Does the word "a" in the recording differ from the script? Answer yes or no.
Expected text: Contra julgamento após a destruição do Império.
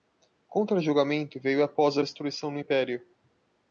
no